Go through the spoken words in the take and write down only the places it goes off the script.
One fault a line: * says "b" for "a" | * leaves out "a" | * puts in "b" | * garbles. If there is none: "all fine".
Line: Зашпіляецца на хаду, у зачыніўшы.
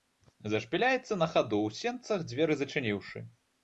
* puts in "сенцах дзверы"